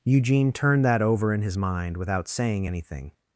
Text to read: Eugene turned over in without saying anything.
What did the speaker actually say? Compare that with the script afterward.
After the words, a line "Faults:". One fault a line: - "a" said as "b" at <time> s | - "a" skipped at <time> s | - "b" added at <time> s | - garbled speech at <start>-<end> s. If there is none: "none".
Eugene turned that over in his mind without saying anything.
Faults:
- "that" added at 0.8 s
- "his mind" added at 1.4 s